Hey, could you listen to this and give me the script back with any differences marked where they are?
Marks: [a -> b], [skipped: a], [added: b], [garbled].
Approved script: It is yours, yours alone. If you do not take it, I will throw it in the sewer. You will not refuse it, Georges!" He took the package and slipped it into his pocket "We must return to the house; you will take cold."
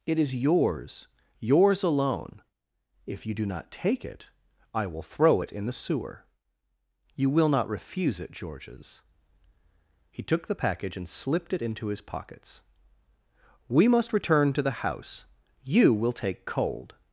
It is yours, yours alone. If you do not take it, I will throw it in the sewer. You will not refuse it, Georges!" He took the package and slipped it into his [pocket -> pockets] "We must return to the house; you will take cold."